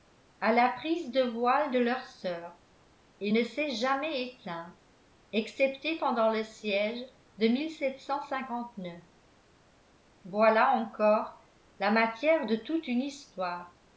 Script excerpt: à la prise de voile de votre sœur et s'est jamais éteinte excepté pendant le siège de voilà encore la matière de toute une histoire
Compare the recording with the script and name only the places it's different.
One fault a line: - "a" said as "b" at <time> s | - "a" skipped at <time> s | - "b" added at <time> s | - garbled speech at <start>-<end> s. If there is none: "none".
- "votre" said as "leur" at 1.8 s
- "ne" added at 3.3 s